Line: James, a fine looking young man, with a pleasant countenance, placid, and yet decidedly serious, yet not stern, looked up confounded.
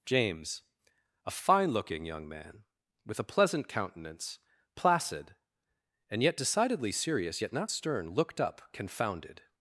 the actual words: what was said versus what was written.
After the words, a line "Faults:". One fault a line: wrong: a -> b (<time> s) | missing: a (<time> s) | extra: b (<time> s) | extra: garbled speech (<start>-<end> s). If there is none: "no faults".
James, a fine looking young man, with a pleasant countenance, placid, and yet decidedly serious, yet not stern, looked up confounded.
Faults:
no faults